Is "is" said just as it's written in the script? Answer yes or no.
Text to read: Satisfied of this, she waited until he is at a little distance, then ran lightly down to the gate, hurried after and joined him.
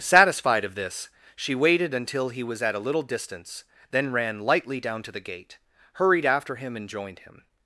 no